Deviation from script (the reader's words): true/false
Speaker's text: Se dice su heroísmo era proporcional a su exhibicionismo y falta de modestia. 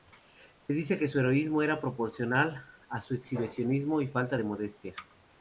true